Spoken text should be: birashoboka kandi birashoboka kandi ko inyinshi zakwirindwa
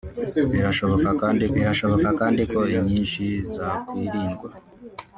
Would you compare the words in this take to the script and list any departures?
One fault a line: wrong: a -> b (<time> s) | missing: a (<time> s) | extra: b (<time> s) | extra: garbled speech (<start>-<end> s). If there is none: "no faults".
no faults